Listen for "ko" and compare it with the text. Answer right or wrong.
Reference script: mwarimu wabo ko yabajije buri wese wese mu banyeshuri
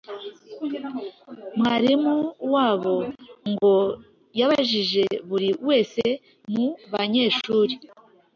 wrong